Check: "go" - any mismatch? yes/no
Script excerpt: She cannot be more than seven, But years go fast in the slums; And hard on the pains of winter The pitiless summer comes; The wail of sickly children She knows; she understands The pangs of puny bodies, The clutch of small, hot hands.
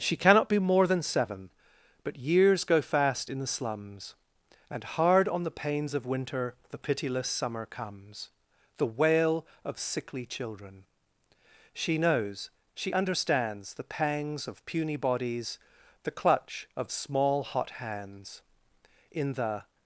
no